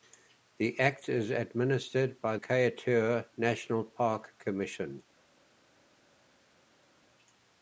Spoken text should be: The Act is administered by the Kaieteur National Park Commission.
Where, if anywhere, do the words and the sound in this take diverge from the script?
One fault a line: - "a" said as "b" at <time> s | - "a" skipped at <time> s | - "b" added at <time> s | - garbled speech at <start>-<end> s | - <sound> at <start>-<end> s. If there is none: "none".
- "the" skipped at 2.4 s